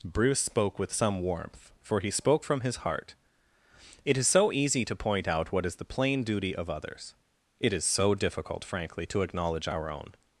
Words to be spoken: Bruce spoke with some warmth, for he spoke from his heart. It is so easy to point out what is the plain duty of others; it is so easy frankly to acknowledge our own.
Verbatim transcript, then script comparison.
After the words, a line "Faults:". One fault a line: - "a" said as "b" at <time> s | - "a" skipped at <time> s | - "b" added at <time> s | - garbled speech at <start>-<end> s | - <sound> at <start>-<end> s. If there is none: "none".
Bruce spoke with some warmth, for he spoke from his heart. It is so easy to point out what is the plain duty of others; it is so difficult frankly to acknowledge our own.
Faults:
- "easy" said as "difficult" at 8.2 s